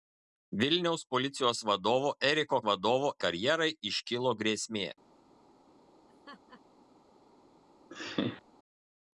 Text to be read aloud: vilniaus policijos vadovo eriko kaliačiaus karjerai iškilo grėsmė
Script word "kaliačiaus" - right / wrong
wrong